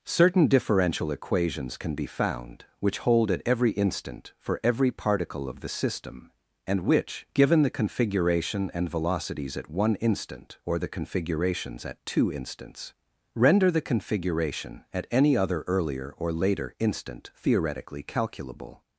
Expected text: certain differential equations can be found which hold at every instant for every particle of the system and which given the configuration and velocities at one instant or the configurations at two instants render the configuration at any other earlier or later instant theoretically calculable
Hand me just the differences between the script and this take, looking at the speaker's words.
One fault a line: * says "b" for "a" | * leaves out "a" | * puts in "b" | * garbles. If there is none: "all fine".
all fine